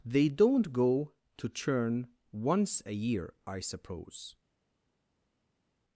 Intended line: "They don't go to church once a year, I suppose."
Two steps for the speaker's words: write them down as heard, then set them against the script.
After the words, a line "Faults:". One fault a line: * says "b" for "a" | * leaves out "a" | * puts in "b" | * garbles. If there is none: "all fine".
"They don't go to churn once a year, I suppose."
Faults:
* says "churn" for "church"